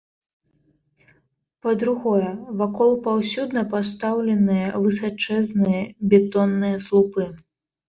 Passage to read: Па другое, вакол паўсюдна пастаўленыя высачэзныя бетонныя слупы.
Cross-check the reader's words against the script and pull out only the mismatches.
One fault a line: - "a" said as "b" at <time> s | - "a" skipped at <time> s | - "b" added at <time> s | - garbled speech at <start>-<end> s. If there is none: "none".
none